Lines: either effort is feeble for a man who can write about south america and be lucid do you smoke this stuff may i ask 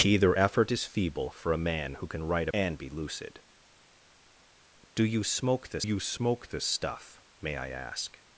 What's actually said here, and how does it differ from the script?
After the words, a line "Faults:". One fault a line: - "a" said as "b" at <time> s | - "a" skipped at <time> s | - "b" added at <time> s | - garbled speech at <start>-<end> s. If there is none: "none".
either effort is feeble for a man who can write and be lucid do you smoke this you smoke this stuff may i ask
Faults:
- "about south america" skipped at 2.5 s
- "you smoke this" added at 5.8 s